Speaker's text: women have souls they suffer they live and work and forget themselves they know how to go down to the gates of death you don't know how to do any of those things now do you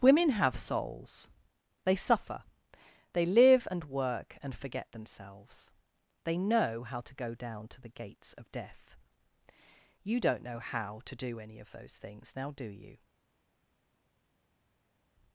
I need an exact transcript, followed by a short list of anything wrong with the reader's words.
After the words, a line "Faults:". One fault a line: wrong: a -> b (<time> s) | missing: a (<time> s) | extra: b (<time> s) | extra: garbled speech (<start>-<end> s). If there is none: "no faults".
women have souls they suffer they live and work and forget themselves they know how to go down to the gates of death you don't know how to do any of those things now do you
Faults:
no faults